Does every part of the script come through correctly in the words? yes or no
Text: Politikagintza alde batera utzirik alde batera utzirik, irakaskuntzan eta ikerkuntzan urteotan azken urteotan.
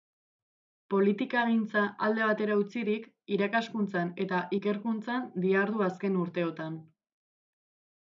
no